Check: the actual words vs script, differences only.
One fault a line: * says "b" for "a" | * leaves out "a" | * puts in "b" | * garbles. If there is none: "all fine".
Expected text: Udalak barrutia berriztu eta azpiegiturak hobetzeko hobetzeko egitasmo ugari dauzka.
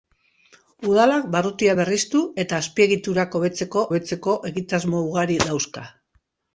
all fine